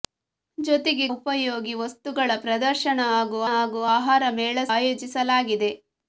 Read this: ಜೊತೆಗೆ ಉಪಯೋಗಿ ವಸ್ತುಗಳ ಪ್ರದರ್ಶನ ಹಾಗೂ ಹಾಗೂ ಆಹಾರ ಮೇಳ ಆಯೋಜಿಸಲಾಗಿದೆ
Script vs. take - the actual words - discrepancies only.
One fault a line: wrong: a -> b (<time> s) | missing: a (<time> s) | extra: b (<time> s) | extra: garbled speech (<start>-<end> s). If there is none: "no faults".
no faults